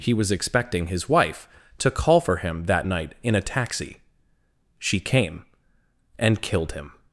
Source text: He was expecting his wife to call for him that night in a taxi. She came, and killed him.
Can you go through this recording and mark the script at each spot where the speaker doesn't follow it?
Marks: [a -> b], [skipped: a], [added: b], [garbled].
He was expecting his wife to call for him that night in a taxi. She came, and killed him.